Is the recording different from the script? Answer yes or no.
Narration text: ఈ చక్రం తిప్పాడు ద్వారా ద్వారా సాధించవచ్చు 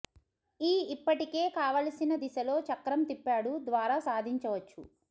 yes